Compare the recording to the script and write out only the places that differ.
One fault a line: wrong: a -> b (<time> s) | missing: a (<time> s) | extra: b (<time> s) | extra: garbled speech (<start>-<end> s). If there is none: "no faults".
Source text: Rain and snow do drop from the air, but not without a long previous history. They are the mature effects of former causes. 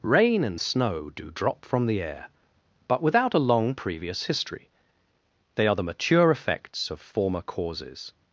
missing: not (3.0 s)